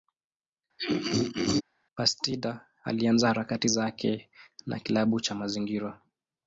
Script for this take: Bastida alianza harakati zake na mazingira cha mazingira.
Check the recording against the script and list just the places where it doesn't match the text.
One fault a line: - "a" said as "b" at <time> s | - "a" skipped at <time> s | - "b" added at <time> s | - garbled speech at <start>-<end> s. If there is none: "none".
- "mazingira" said as "kilabu" at 4.8 s